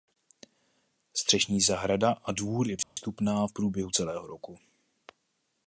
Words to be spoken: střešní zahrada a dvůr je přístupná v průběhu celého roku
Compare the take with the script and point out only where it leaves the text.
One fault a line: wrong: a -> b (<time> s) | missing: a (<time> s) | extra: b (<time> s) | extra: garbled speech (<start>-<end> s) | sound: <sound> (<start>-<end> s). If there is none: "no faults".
sound: dropout (2.8-3.0 s)